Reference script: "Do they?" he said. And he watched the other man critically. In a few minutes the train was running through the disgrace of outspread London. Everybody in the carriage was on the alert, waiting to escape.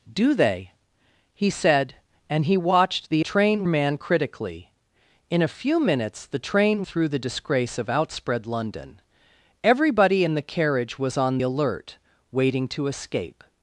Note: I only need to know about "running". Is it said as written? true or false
false